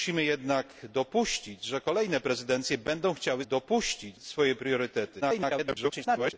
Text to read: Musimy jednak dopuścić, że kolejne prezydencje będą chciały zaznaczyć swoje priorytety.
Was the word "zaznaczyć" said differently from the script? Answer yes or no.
yes